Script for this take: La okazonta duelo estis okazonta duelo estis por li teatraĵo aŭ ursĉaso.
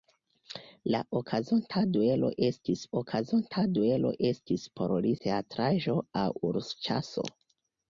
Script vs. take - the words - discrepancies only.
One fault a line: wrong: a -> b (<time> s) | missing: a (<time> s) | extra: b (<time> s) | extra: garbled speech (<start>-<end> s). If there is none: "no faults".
no faults